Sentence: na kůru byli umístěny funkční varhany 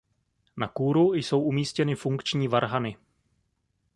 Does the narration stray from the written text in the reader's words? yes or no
yes